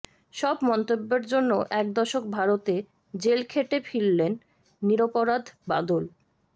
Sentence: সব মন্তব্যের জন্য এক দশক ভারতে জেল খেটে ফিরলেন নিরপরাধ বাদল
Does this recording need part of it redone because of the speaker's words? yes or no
no